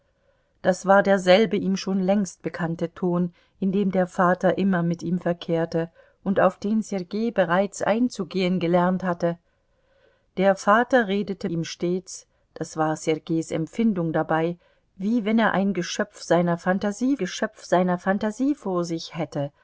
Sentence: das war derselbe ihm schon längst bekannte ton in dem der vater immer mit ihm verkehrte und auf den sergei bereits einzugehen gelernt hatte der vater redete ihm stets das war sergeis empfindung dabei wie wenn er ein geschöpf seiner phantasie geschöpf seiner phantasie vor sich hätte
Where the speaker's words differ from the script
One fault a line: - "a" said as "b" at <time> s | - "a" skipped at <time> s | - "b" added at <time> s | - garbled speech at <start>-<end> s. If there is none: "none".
none